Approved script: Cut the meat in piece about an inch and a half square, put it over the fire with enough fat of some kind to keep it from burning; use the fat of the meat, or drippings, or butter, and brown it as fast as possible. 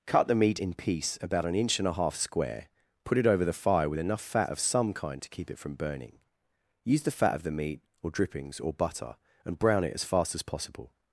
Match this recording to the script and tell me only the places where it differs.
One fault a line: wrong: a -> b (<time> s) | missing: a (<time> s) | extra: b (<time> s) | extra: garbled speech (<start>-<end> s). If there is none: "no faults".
no faults